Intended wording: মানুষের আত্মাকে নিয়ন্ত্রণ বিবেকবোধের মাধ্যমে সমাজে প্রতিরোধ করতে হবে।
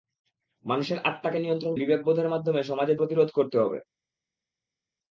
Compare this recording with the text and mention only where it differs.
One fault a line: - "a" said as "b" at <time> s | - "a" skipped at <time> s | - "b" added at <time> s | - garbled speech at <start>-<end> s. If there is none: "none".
none